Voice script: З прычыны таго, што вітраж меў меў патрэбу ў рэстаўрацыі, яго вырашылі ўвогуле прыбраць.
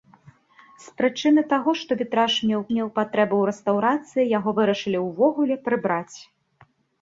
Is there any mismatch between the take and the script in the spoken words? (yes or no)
no